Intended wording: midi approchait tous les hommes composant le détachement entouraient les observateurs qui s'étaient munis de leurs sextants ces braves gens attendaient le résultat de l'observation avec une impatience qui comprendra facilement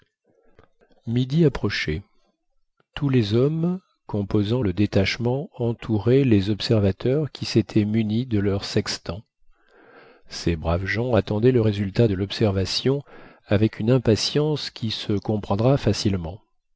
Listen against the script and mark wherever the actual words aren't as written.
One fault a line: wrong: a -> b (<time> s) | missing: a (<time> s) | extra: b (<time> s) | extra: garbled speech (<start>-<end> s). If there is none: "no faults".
extra: se (14.9 s)